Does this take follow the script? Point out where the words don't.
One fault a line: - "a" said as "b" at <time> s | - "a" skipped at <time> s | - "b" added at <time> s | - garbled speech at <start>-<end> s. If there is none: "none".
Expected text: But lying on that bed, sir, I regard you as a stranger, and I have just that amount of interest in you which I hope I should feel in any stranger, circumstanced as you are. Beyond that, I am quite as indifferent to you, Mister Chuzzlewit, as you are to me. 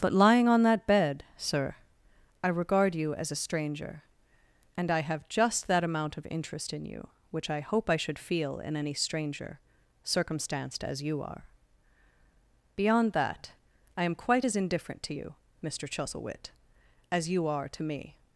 none